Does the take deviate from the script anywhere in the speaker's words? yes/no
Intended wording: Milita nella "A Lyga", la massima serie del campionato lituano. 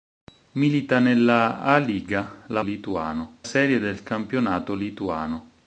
yes